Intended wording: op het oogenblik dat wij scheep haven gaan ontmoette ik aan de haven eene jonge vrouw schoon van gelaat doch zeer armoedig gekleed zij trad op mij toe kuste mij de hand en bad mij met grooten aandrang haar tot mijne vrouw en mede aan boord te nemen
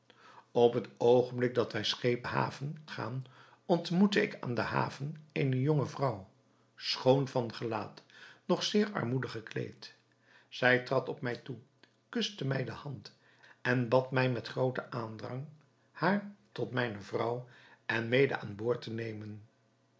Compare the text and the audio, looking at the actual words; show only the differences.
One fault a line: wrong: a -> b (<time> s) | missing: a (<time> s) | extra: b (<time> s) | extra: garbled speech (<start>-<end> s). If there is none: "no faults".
no faults